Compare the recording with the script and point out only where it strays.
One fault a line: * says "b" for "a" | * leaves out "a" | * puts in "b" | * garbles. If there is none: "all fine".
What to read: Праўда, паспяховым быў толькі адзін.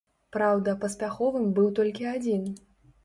all fine